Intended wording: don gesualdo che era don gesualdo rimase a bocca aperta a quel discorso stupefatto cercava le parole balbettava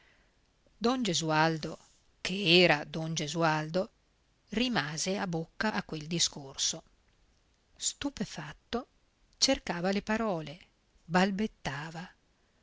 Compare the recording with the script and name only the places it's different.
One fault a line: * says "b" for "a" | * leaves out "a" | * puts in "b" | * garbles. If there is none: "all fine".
* leaves out "aperta"